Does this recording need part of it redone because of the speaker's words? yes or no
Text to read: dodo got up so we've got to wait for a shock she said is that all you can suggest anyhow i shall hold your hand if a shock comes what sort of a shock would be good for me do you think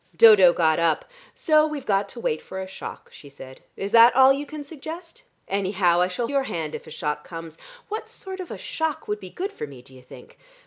yes